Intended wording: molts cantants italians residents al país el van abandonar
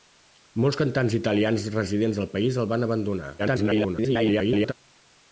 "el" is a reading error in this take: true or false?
false